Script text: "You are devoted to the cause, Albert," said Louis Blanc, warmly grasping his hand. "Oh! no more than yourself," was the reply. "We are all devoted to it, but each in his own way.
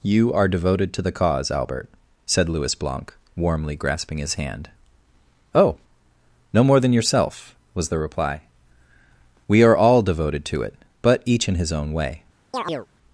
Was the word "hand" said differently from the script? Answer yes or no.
no